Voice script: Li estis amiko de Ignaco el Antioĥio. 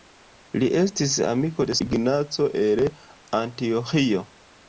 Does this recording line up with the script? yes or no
yes